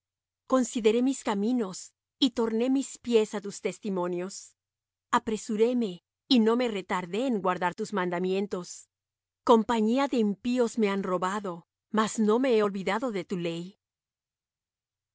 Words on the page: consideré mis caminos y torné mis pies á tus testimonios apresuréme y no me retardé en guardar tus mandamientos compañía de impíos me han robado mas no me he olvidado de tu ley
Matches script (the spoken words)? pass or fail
pass